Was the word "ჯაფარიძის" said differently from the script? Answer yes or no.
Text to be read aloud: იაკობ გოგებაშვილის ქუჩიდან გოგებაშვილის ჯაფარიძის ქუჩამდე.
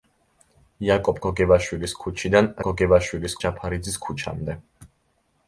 no